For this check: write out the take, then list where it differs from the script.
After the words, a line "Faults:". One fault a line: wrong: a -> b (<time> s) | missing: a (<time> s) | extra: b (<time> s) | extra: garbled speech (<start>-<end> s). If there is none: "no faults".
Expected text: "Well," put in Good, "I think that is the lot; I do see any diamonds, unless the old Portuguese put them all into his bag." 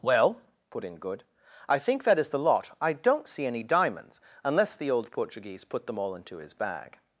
"Well," put in Good, "I think that is the lot; I don't see any diamonds, unless the old Portuguese put them all into his bag."
Faults:
wrong: do -> don't (2.9 s)